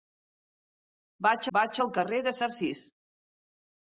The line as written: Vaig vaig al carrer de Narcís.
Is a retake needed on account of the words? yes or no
no